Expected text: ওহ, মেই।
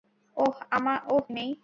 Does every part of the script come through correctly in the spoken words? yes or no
yes